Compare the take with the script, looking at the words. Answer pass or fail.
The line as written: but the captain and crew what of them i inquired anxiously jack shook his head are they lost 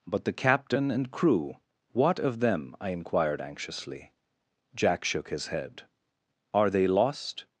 pass